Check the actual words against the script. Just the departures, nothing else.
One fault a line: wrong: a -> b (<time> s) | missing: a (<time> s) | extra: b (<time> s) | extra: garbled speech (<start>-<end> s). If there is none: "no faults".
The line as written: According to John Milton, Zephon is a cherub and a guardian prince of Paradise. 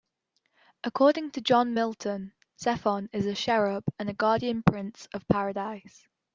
no faults